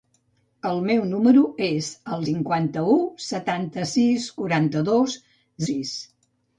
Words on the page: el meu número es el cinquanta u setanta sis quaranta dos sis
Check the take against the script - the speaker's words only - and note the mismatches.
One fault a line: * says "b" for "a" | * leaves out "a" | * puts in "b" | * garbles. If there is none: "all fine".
all fine